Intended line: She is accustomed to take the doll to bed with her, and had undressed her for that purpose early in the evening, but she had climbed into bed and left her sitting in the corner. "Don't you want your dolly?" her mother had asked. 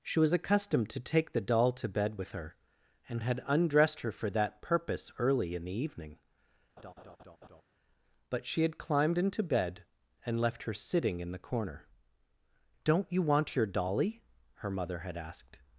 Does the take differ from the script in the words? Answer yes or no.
yes